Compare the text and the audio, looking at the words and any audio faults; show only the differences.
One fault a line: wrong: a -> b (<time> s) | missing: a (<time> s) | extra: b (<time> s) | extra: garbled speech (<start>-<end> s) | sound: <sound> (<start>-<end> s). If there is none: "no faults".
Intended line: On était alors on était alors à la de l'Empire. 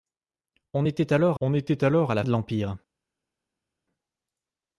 no faults